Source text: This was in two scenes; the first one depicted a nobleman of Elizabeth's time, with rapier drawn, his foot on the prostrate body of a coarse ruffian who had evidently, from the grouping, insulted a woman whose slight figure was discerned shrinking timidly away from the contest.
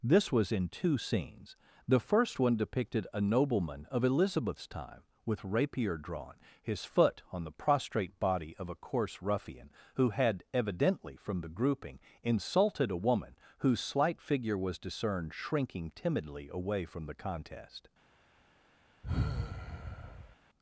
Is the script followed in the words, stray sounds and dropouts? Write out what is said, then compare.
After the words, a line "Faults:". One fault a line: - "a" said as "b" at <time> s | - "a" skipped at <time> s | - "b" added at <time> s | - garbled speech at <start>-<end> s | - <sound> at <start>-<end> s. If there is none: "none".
This was in two scenes; the first one depicted a nobleman of Elizabeth's time, with rapier drawn, his foot on the prostrate body of a coarse ruffian who had evidently, from the grouping, insulted a woman whose slight figure was discerned shrinking timidly away from the contest.
Faults:
- sigh at 19.0-20.4 s